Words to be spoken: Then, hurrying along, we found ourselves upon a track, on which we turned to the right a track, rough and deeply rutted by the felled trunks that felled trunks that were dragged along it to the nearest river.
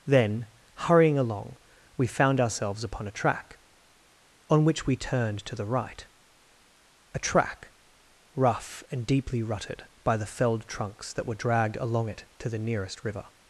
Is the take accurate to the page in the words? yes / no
no